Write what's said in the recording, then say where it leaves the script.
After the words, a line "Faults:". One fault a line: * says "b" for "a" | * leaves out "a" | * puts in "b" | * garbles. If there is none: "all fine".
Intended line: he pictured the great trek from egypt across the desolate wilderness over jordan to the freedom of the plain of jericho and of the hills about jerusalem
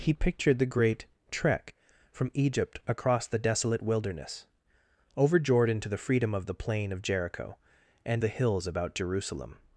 he pictured the great trek from egypt across the desolate wilderness over jordan to the freedom of the plain of jericho and the hills about jerusalem
Faults:
* leaves out "of"